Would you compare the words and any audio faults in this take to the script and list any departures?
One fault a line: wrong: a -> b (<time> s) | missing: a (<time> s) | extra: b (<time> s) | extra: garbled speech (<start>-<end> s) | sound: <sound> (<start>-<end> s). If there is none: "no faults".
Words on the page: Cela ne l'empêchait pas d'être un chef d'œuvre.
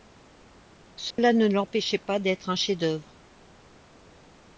sound: dropout (1.1-1.2 s)